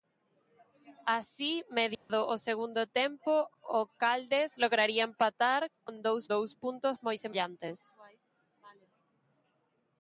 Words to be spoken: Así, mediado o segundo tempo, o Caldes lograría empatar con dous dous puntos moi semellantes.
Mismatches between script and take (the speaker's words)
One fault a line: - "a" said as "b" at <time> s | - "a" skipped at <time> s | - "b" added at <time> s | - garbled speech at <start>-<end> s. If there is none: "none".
none